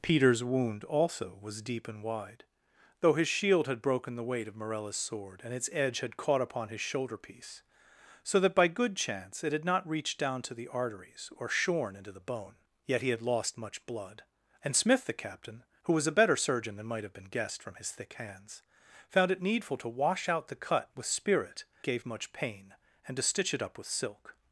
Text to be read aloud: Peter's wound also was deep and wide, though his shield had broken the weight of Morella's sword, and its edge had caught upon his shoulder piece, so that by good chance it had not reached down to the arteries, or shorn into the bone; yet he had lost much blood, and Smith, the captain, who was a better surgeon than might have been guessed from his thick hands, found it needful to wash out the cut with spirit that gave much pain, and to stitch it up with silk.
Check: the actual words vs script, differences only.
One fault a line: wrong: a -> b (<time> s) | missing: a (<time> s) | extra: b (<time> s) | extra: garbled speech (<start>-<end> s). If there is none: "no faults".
missing: that (21.6 s)